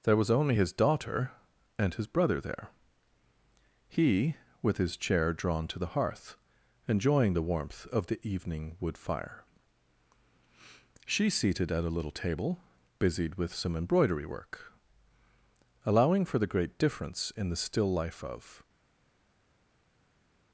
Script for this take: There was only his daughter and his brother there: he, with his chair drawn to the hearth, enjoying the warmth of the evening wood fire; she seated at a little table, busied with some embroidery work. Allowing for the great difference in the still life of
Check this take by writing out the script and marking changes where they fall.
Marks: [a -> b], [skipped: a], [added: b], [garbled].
There was only his daughter and his brother there: he, with his chair drawn to the hearth, enjoying the warmth of the evening wood fire; she seated at a little table, busied with some embroidery work. Allowing for the great difference in the still life of